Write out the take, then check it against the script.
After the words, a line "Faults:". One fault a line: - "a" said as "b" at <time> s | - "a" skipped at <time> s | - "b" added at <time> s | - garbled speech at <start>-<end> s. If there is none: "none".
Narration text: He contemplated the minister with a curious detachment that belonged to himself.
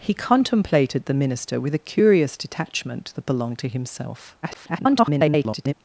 He contemplated the minister with a curious detachment that belonged to himself. [garbled]
Faults:
- garbled speech at 4.4-5.7 s